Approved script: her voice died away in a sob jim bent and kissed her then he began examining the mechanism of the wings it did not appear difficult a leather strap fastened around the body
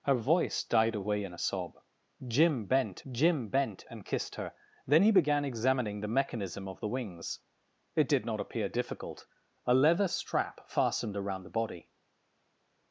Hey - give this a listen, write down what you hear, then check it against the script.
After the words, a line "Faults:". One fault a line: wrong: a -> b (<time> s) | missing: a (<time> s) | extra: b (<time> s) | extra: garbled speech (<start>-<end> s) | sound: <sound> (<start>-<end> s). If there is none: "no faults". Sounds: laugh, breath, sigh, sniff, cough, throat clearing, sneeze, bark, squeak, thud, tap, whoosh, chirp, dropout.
her voice died away in a sob jim bent jim bent and kissed her then he began examining the mechanism of the wings it did not appear difficult a leather strap fastened around the body
Faults:
extra: jim bent (3.1 s)